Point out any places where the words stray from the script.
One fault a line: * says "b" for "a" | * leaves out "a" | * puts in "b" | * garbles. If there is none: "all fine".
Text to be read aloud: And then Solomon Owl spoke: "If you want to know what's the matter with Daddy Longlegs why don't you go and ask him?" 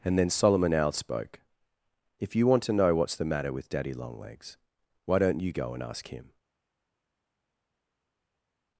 all fine